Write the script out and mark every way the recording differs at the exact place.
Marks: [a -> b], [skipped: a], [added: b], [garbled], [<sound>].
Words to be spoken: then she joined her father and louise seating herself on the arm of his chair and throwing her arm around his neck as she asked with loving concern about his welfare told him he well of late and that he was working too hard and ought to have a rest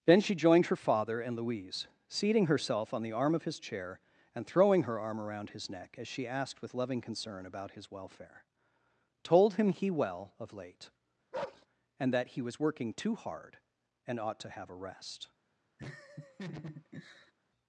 then she joined her father and louise seating herself on the arm of his chair and throwing her arm around his neck as she asked with loving concern about his welfare told him he well of late [bark] and that he was working too hard and ought to have a rest [laugh]